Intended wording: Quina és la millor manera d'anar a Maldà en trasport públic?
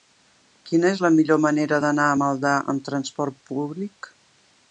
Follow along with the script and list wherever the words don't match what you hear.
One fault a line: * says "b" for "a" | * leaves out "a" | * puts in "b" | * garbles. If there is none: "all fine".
* says "amb" for "en"